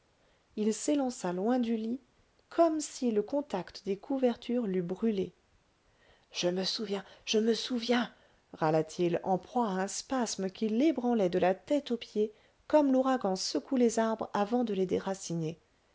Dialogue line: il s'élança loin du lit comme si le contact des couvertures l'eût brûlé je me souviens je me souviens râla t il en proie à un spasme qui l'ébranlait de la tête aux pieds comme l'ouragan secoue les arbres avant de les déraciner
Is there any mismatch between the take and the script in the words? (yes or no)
no